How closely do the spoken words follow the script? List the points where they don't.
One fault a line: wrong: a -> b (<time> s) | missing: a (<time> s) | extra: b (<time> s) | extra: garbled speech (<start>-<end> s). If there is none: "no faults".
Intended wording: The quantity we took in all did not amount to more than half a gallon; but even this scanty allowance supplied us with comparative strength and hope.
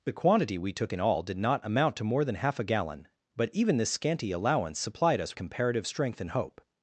missing: with (5.4 s)